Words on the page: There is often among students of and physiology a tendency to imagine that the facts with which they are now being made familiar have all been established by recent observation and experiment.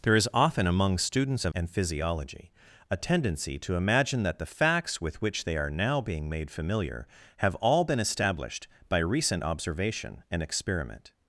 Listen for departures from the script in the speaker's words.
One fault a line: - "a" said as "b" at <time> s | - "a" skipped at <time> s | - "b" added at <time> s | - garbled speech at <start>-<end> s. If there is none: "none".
none